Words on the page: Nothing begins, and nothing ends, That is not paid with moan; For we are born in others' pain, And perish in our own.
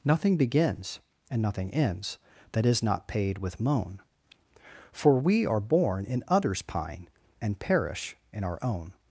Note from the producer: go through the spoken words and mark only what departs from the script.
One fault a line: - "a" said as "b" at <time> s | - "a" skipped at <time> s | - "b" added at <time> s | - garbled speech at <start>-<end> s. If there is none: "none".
- "pain" said as "pine" at 6.6 s